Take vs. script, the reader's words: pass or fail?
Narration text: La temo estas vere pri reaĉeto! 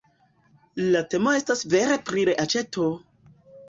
pass